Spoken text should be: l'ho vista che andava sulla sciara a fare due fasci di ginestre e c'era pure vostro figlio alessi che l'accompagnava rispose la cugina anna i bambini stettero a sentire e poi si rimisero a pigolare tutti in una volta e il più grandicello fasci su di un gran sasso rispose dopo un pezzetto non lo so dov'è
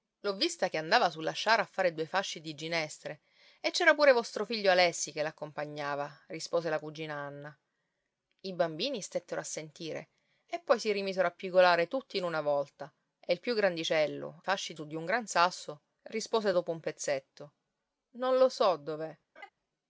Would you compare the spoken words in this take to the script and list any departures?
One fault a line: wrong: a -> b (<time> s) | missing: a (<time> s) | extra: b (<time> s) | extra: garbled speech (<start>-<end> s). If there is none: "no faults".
no faults